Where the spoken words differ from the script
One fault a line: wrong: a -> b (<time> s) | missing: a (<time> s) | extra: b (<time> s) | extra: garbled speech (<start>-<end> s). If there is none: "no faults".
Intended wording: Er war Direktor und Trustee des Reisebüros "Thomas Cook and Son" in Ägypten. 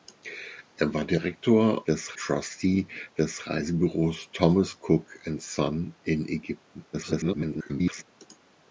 wrong: und -> des (1.9 s)
extra: garbled speech (6.9-8.0 s)